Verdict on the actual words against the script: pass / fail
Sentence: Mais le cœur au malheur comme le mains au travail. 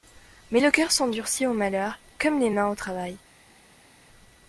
fail